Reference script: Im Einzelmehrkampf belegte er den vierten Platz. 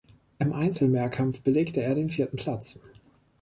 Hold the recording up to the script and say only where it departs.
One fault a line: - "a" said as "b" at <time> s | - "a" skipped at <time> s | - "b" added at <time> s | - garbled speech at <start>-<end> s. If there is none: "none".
none